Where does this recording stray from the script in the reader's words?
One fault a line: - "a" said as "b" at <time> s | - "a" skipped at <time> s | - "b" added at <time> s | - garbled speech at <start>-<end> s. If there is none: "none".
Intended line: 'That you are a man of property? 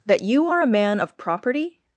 none